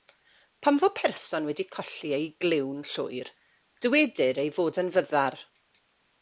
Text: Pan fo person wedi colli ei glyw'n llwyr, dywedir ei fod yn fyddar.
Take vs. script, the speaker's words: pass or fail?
pass